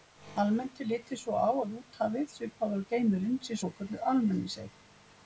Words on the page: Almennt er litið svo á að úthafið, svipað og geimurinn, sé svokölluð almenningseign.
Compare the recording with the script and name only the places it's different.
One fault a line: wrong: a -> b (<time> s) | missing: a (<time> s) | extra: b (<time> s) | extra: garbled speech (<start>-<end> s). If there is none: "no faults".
no faults